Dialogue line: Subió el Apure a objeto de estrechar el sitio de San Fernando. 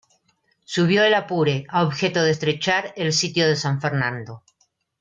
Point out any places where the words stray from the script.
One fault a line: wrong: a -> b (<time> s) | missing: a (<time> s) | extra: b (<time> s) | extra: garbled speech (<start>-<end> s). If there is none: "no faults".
no faults